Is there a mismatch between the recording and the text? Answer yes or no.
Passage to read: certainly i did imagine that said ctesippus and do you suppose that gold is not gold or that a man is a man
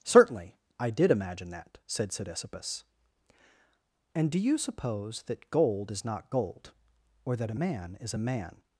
no